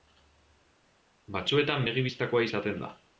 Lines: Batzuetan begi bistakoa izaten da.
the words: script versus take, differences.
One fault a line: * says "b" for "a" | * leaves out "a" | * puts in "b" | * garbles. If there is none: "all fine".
all fine